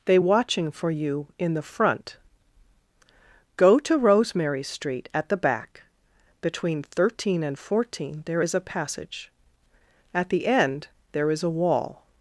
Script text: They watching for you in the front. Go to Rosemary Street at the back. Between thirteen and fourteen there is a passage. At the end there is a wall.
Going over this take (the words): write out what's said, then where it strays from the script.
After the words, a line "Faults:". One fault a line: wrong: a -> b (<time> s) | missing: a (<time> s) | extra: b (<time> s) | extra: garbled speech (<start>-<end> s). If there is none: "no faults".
They watching for you in the front. Go to Rosemary Street at the back. Between thirteen and fourteen there is a passage. At the end there is a wall.
Faults:
no faults